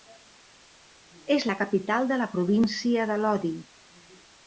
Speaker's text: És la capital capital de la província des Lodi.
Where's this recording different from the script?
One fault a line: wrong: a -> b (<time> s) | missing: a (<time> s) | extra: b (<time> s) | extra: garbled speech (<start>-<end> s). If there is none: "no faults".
missing: capital (2.1 s)
wrong: des -> de (3.1 s)